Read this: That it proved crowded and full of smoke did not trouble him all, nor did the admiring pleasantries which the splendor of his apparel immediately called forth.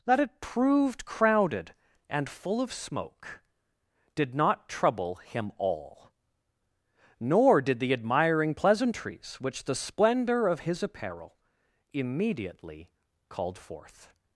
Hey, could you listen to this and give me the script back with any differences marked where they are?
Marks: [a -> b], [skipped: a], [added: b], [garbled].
That it proved crowded and full of smoke did not trouble him all, nor did the admiring pleasantries which the splendor of his apparel immediately called forth.